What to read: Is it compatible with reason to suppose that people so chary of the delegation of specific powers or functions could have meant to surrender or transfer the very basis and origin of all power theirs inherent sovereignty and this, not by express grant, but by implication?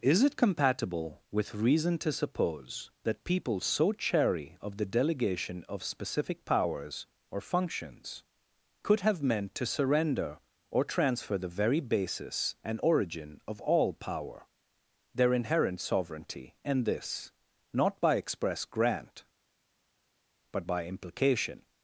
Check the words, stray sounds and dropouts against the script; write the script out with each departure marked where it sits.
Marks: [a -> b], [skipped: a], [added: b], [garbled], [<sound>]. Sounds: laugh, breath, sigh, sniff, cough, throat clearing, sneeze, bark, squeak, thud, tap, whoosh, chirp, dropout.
Is it compatible with reason to suppose that people so chary of the delegation of specific powers or functions could have meant to surrender or transfer the very basis and origin of all power [theirs -> their] inherent sovereignty and this, not by express grant, but by implication?